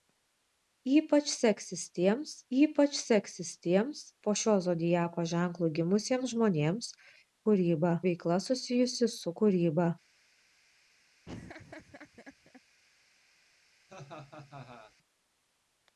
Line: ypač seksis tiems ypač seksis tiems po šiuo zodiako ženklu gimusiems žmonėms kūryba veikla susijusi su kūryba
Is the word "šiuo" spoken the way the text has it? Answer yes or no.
yes